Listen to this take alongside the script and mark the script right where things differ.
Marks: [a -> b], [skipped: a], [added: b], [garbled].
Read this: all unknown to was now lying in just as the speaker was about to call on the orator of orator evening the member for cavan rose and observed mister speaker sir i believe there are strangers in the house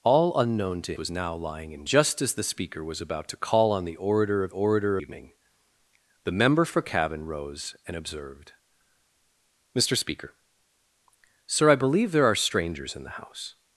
all unknown to was now lying in just as the speaker was about to call on the orator of orator evening the member for cavan rose and observed mister speaker sir i believe there are strangers in the house